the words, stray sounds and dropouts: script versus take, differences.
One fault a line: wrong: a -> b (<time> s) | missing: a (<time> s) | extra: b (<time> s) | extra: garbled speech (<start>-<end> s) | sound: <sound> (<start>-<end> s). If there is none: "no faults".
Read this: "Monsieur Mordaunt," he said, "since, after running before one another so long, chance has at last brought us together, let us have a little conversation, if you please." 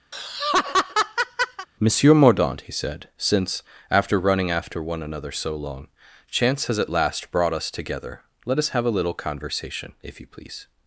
sound: laugh (0.1-1.7 s)
wrong: before -> after (4.5 s)